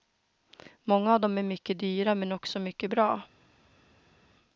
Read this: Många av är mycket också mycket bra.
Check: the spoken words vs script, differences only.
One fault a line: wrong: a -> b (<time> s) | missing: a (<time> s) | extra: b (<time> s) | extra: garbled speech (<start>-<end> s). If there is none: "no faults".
extra: dem (1.2 s)
extra: dyra men (1.8 s)